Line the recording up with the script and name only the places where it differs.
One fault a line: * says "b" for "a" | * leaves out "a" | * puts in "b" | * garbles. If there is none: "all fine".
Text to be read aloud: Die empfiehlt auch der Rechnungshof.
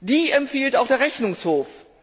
all fine